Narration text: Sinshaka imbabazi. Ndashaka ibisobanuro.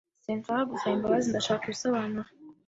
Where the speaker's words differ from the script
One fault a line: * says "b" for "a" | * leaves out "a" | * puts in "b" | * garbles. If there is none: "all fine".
* puts in "gusaba"